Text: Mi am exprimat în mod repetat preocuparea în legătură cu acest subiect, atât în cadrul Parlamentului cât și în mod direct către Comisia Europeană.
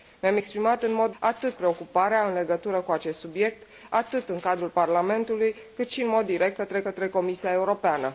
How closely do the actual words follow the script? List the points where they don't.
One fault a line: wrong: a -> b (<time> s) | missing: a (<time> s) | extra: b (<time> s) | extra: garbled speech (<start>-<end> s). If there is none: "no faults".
wrong: repetat -> atât (1.2 s)
extra: către (6.8 s)